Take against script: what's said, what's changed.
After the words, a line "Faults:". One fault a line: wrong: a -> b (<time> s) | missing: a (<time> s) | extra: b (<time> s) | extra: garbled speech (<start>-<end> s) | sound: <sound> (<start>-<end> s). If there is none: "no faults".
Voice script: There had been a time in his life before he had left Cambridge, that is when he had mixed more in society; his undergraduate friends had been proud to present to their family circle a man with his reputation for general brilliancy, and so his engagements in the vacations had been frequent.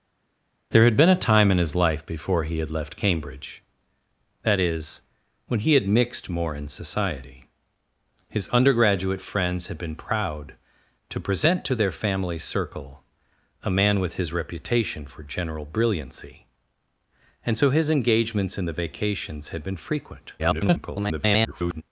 There had been a time in his life before he had left Cambridge, that is when he had mixed more in society; his undergraduate friends had been proud to present to their family circle a man with his reputation for general brilliancy, and so his engagements in the vacations had been frequent. [garbled]
Faults:
extra: garbled speech (20.4-21.8 s)